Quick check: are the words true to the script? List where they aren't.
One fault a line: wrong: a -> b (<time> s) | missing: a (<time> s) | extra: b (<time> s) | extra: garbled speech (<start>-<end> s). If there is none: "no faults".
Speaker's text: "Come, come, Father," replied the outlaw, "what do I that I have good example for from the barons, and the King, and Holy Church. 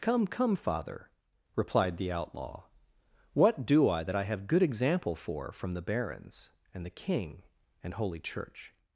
no faults